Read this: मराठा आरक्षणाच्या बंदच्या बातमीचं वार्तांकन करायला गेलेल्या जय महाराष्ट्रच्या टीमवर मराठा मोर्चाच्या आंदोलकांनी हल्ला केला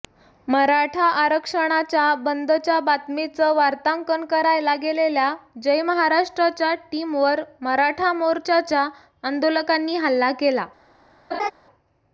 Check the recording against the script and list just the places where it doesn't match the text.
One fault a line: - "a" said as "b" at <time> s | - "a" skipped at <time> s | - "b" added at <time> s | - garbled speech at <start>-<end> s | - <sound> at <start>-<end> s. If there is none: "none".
- laugh at 11.3-11.5 s